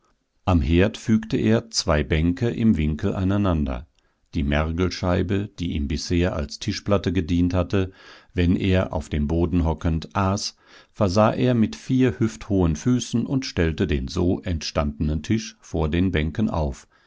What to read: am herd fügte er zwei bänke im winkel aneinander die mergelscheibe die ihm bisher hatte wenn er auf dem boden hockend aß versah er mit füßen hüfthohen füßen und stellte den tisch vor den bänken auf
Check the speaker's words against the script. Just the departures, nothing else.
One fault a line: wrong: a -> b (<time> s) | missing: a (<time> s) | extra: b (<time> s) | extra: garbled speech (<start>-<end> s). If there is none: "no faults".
extra: als tischplatte gedient (6.3 s)
wrong: füßen -> vier (11.8 s)
extra: so entstandenen (14.1 s)